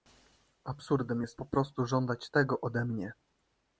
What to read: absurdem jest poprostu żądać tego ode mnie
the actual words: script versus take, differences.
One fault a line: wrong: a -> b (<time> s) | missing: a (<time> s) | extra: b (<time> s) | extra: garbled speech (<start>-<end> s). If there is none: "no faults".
no faults